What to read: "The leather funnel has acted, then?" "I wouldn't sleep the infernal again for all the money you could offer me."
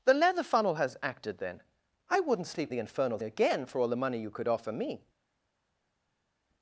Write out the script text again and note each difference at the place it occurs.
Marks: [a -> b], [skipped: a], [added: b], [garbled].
"The leather funnel has acted, then?" "I wouldn't sleep the infernal again for all the money you could offer me."